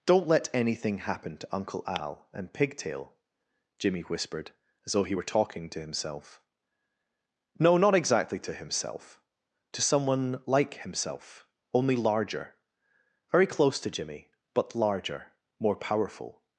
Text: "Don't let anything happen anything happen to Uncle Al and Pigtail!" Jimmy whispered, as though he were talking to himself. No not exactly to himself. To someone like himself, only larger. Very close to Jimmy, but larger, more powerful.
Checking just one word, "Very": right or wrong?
right